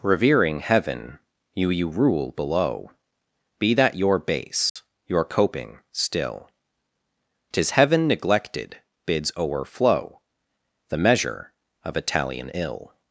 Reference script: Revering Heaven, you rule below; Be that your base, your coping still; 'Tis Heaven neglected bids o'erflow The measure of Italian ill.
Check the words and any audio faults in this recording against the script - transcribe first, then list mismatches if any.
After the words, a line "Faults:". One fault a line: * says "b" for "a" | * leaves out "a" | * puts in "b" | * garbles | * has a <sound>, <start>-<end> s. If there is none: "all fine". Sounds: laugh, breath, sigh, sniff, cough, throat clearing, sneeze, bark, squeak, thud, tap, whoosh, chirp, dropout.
Revering Heaven, you you rule below; Be that your base, your coping still; 'Tis Heaven neglected bids o'erflow The measure of Italian ill.
Faults:
* puts in "you"
* has a dropout, 4.7-4.8 s